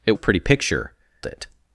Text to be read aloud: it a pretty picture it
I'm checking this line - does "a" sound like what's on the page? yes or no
yes